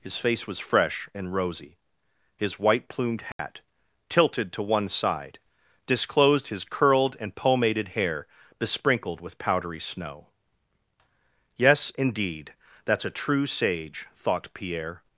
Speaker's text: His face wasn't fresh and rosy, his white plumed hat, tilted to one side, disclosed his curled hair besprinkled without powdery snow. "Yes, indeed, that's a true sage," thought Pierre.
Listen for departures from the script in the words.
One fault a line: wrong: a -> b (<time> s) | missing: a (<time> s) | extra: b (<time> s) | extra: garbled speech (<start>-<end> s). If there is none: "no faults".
wrong: wasn't -> was (0.5 s)
extra: and pomaded (7.2 s)
wrong: without -> with (9.2 s)